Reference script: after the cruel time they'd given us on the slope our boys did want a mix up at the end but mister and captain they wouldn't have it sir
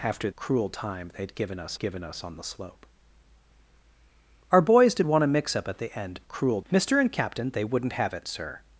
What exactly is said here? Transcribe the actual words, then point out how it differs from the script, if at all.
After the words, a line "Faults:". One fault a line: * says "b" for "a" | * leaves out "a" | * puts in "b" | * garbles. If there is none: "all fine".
after cruel time they'd given us given us on the slope our boys did want a mix up at the end cruel mister and captain they wouldn't have it sir
Faults:
* leaves out "the"
* puts in "given us"
* says "cruel" for "but"